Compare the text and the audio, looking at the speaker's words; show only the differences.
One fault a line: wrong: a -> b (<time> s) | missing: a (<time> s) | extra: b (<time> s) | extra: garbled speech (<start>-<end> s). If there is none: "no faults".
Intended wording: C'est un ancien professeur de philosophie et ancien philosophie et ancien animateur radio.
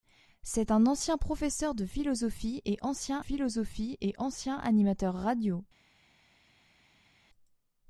no faults